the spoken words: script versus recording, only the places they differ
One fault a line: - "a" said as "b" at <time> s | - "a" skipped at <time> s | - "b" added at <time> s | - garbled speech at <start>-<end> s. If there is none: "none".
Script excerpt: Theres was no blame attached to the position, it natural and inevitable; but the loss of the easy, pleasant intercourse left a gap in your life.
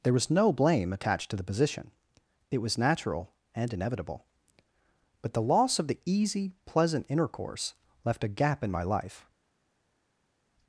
- "Theres" said as "There" at 0.0 s
- "was" added at 2.6 s
- "your" said as "my" at 8.7 s